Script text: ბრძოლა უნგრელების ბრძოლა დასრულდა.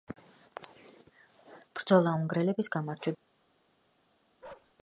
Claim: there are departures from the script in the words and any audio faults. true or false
true